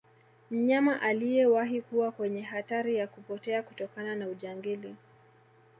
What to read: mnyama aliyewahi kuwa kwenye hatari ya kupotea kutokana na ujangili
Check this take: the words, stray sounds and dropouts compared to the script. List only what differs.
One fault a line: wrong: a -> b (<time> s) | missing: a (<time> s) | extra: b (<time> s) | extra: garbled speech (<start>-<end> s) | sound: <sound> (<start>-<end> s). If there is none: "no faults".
no faults